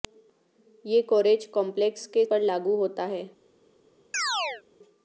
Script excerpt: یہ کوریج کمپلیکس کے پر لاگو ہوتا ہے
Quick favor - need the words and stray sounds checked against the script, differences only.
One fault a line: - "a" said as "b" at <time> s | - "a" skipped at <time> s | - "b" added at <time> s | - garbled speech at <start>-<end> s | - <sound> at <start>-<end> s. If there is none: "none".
- chirp at 4.1-4.6 s